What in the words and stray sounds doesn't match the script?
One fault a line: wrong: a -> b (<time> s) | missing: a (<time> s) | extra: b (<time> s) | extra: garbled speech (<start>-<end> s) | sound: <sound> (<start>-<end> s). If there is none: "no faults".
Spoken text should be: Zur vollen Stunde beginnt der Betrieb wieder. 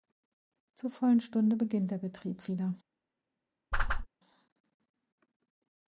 sound: whoosh (3.7-4.1 s)